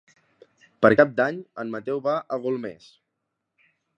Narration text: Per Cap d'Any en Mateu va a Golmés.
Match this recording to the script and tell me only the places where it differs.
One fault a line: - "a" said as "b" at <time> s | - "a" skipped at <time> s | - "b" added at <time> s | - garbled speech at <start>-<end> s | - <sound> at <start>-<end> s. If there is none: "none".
none